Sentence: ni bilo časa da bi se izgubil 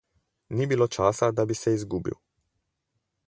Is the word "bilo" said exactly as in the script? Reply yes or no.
yes